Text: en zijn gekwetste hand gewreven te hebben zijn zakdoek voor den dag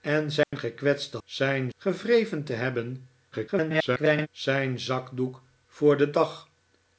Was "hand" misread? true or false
true